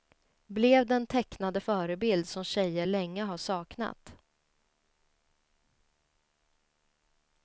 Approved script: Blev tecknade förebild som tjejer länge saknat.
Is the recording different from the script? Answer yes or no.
yes